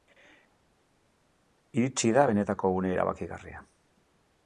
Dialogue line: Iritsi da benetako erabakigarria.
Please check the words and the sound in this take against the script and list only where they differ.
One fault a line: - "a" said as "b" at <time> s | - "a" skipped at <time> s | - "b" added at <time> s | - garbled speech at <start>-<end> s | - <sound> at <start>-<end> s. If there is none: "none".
- "une" added at 2.8 s